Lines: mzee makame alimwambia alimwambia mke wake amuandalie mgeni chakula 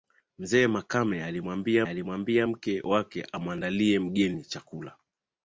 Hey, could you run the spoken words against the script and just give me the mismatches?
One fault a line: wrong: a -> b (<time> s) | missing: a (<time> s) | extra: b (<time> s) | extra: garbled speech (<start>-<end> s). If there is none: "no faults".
no faults